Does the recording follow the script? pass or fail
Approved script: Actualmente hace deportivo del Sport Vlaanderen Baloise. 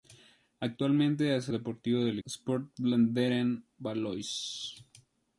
pass